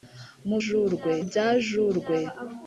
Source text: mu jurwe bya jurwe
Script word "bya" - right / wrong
right